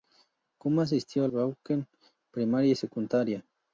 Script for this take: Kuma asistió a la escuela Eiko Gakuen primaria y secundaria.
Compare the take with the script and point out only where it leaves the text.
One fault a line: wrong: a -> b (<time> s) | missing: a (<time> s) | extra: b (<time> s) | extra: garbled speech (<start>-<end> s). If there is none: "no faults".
missing: la escuela Eiko (1.3 s)